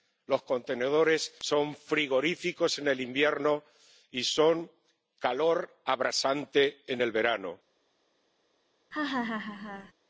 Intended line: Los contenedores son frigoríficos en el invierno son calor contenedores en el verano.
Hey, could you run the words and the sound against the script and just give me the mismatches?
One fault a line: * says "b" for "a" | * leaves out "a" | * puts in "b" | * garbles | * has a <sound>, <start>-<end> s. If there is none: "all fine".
* puts in "y"
* says "abrasante" for "contenedores"
* has a laugh, 8.9-9.9 s